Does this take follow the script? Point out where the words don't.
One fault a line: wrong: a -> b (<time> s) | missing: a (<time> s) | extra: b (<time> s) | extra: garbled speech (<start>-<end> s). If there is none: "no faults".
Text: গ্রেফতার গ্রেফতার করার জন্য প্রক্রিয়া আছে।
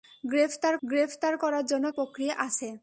no faults